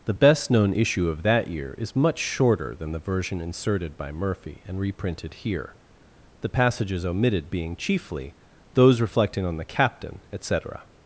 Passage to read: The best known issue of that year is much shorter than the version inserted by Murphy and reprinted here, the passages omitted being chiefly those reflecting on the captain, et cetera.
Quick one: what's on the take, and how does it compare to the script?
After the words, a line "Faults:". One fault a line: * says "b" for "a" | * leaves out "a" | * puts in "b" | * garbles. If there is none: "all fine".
The best known issue of that year is much shorter than the version inserted by Murphy and reprinted here, the passages omitted being chiefly those reflecting on the captain, et cetera.
Faults:
all fine